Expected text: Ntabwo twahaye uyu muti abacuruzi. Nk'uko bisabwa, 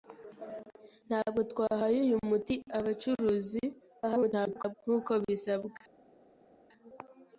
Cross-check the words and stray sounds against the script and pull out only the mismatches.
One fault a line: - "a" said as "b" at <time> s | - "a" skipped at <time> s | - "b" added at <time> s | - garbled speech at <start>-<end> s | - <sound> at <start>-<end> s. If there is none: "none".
- garbled speech at 4.0-4.7 s